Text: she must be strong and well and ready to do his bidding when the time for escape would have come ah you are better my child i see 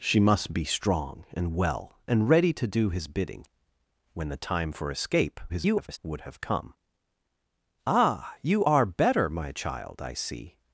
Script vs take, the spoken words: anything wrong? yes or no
yes